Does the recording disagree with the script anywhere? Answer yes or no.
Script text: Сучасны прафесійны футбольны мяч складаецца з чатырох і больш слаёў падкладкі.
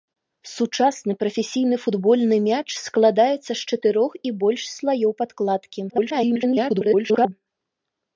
yes